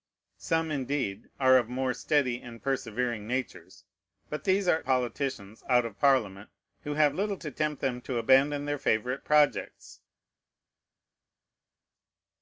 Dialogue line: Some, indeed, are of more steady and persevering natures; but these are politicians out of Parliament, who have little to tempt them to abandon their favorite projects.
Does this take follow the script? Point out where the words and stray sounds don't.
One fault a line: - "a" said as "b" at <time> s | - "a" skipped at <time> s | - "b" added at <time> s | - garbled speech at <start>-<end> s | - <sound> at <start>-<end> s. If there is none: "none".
none